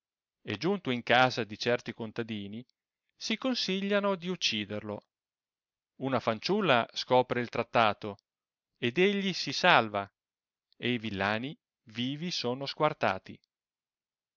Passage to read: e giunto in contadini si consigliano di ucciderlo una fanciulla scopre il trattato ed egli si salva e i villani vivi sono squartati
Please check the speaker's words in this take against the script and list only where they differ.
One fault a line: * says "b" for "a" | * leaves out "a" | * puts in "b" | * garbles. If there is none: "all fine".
* puts in "casa di certi"